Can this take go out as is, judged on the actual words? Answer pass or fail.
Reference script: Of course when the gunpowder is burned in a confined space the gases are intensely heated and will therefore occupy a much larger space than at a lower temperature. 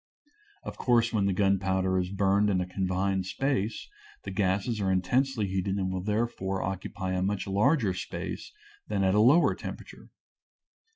pass